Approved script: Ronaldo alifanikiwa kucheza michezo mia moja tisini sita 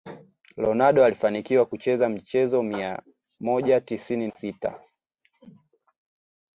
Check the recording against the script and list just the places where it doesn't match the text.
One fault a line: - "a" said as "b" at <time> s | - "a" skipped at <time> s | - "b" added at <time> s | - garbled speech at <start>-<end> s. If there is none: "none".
none